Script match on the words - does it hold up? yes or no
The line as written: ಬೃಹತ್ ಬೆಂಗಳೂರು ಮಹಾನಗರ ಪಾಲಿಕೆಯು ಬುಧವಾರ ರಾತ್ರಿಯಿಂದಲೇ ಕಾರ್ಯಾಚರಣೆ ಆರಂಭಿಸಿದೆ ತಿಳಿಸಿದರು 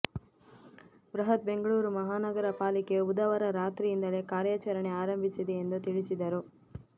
no